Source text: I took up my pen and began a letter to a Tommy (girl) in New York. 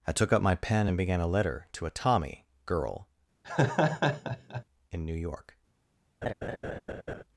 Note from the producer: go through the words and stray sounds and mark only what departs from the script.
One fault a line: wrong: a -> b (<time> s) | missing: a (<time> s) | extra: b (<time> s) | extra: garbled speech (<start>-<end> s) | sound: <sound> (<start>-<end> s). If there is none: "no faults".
sound: laugh (3.4-4.6 s)
sound: laugh (6.2-7.2 s)